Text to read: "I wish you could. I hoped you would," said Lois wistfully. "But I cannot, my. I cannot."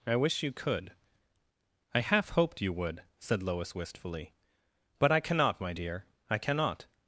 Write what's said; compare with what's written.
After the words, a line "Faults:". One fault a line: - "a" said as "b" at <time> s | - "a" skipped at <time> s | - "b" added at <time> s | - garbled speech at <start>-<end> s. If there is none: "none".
"I wish you could. I half hoped you would," said Lois wistfully. "But I cannot, my dear. I cannot."
Faults:
- "half" added at 2.0 s
- "dear" added at 5.7 s